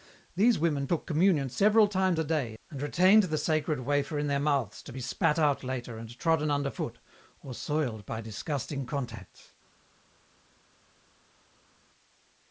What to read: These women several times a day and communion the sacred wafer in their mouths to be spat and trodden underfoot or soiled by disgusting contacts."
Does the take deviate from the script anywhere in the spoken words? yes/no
yes